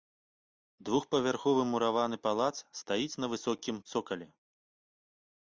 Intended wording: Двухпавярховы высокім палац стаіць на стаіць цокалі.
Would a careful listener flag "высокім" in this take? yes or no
yes